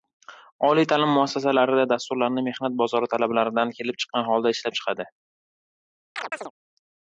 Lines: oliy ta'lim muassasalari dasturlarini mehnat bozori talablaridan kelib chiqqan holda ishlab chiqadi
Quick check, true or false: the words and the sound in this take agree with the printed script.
false